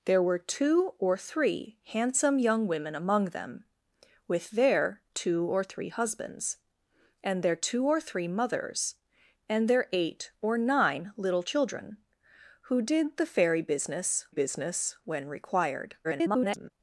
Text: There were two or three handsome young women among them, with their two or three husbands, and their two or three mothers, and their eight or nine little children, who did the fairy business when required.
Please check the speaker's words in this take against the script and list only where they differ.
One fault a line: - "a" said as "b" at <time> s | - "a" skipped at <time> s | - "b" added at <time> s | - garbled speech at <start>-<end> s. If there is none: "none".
- "business" added at 14.3 s
- garbled speech at 16.0-16.7 s